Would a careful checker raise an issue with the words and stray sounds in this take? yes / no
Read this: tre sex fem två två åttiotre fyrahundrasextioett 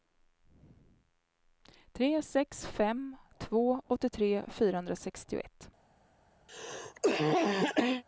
yes